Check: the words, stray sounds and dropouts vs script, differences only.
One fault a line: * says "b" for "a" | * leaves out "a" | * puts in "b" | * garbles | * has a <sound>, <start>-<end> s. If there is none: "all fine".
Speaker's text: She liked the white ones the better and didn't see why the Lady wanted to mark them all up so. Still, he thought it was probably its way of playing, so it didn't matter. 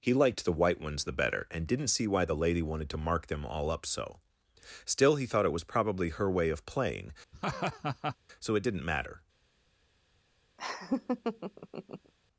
* says "He" for "She"
* says "her" for "its"
* has a laugh, 7.3-8.2 s
* has a laugh, 10.6-12.1 s